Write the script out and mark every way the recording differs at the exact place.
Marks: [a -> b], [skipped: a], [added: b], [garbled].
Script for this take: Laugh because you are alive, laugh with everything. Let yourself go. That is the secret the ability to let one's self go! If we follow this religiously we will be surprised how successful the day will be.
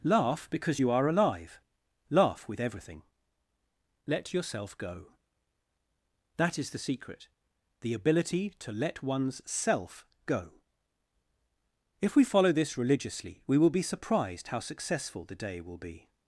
Laugh because you are alive, laugh with everything. Let yourself go. That is the secret the ability to let one's self go! If we follow this religiously we will be surprised how successful the day will be.